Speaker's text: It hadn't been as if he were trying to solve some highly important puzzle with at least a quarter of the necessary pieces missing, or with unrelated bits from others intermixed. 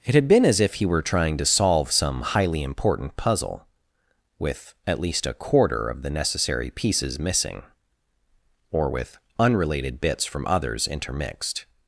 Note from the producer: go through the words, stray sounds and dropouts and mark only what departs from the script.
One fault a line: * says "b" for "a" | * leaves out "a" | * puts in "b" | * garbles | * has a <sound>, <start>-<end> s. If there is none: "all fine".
* says "had" for "hadn't"